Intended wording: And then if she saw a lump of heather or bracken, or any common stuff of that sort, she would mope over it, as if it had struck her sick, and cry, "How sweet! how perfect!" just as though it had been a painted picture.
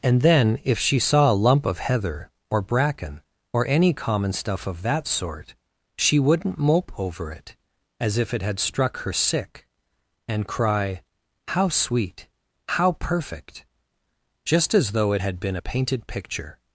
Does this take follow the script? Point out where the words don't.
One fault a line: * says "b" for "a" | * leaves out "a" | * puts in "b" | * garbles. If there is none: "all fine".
* says "wouldn't" for "would"